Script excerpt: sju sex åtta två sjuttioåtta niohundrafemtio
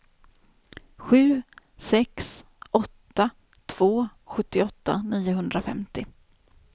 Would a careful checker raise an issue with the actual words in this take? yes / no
no